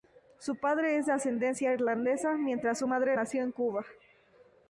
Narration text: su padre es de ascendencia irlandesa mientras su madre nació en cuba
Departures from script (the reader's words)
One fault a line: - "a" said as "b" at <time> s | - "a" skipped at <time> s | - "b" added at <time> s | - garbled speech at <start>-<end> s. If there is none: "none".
none